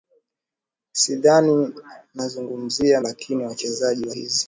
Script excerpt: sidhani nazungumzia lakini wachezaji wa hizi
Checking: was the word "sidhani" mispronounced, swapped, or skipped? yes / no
no